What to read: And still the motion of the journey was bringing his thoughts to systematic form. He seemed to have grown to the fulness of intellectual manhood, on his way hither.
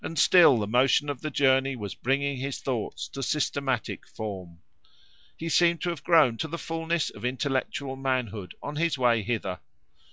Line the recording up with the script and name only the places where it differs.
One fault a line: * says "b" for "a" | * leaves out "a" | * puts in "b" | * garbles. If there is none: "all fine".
all fine